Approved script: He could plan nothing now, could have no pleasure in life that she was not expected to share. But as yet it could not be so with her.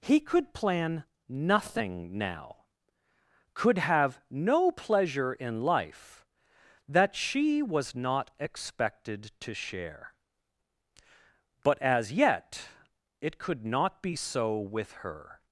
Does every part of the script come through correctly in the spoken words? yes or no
yes